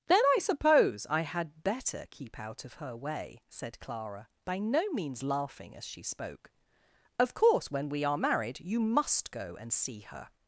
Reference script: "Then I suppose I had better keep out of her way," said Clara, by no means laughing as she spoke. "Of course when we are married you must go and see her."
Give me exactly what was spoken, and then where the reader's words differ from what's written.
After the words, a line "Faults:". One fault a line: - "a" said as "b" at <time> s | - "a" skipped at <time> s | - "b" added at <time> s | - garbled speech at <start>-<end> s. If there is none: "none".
"Then I suppose I had better keep out of her way," said Clara, by no means laughing as she spoke. "Of course when we are married you must go and see her."
Faults:
none